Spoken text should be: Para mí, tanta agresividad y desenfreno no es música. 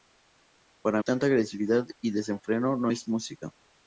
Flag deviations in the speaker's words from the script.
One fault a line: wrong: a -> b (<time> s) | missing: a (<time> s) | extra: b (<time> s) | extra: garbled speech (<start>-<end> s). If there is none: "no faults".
missing: mí (1.0 s)